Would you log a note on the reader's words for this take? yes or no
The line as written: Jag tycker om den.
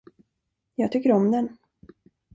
no